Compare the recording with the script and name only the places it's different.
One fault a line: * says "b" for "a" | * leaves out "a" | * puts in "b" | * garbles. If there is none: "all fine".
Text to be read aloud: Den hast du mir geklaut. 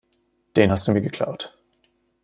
all fine